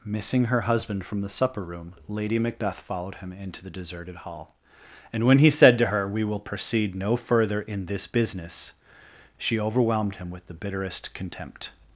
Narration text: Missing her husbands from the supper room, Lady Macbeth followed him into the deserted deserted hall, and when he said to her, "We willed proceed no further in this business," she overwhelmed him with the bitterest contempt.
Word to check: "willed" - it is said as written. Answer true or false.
false